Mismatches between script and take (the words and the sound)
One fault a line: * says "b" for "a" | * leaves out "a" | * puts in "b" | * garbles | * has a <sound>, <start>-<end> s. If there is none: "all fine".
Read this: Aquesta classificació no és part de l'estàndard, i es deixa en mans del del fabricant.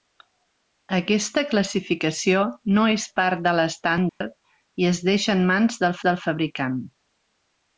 * has a dropout, 4.1-4.2 s